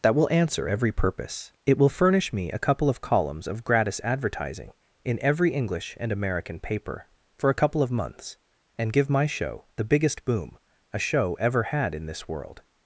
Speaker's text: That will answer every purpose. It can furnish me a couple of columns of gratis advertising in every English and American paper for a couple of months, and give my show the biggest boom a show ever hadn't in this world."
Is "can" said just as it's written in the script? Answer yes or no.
no